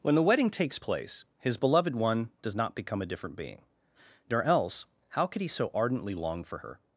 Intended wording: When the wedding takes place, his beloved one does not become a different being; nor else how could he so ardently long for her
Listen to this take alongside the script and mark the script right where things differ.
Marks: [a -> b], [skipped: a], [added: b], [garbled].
When the wedding takes place, his beloved one does not become a different being; nor else how could he so ardently long for her